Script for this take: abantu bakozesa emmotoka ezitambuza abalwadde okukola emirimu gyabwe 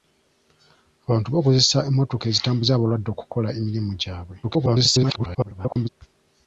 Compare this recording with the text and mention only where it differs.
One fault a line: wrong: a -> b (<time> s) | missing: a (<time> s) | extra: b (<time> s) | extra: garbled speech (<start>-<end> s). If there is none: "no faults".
extra: garbled speech (4.4-5.9 s)